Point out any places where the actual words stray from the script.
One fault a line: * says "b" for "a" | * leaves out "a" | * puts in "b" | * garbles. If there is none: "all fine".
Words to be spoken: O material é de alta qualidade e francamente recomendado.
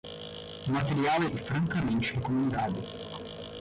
* leaves out "de alta qualidade"